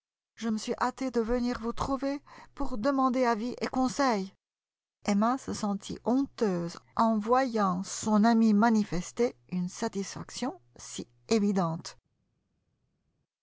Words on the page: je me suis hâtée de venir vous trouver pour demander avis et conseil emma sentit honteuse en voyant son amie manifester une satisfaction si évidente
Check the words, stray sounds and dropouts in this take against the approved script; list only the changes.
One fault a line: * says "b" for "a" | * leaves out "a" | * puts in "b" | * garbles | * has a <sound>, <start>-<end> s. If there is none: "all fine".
* puts in "se"